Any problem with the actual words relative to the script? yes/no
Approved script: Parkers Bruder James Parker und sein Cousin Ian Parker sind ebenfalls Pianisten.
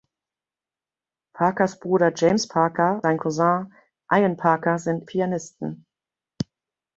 yes